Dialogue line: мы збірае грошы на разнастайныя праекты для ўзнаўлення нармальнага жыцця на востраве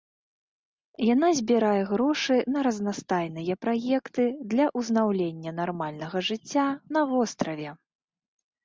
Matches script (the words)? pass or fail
fail